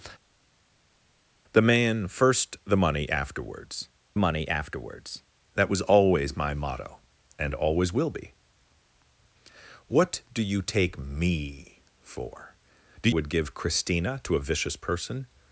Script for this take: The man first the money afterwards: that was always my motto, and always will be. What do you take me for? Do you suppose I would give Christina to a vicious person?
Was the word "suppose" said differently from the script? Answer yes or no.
yes